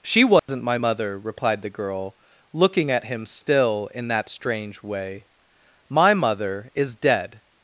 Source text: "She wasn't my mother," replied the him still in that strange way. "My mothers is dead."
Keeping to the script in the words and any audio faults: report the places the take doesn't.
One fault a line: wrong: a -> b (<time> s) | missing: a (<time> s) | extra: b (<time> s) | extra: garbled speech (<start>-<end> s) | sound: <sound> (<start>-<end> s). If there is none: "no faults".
sound: dropout (0.4-0.5 s)
extra: girl looking at (1.7 s)
wrong: mothers -> mother (6.1 s)